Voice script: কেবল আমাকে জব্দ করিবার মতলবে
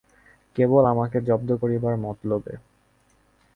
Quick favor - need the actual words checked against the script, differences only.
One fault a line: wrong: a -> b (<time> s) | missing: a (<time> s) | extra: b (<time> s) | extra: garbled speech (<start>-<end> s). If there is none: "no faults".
no faults